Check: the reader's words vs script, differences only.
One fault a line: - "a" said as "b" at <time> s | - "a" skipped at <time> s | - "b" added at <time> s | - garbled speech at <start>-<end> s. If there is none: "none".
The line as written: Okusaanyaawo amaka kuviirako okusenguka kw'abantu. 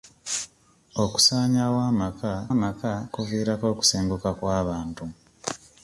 - "amaka" added at 2.5 s